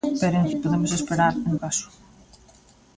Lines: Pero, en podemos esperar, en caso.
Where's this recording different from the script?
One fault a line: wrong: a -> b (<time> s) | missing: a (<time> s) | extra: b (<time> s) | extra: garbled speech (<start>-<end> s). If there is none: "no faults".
no faults